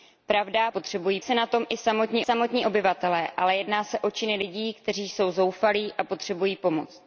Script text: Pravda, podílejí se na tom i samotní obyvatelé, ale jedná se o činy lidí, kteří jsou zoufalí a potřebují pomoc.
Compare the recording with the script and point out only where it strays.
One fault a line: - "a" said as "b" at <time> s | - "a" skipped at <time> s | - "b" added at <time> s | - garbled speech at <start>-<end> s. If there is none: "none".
- "podílejí" said as "potřebují" at 0.7 s
- "samotní" added at 2.2 s